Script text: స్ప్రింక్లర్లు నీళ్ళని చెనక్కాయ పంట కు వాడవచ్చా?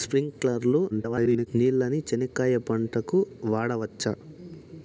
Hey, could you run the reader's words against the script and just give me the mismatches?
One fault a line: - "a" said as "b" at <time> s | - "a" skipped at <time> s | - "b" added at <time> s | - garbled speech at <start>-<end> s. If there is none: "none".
- garbled speech at 0.9-1.5 s